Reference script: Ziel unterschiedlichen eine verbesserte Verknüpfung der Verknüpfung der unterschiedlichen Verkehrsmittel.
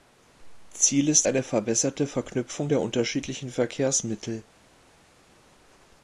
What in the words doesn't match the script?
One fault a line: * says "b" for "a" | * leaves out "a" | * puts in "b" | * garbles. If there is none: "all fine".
* says "ist" for "unterschiedlichen"
* leaves out "Verknüpfung der"